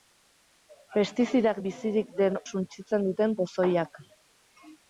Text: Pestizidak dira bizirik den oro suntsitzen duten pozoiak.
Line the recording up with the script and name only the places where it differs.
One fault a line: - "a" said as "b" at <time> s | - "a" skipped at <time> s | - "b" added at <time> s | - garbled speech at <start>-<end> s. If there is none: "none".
- "dira" skipped at 1.6 s
- "oro" skipped at 2.4 s